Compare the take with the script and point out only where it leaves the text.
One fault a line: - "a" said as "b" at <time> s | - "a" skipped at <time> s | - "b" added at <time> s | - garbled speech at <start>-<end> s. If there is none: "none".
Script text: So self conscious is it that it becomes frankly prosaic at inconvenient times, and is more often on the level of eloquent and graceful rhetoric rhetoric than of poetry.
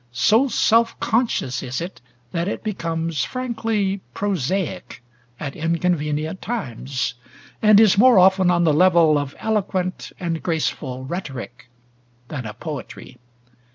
- "rhetoric" skipped at 11.7 s